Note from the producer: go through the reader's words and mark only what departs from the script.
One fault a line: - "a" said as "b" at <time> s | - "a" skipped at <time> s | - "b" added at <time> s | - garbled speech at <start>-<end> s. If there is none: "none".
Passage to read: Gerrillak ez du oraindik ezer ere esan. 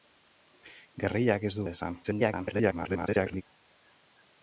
- "oraindik ezer" skipped at 1.6 s
- garbled speech at 2.0-3.4 s